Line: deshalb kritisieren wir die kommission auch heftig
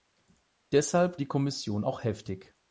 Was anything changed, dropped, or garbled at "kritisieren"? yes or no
yes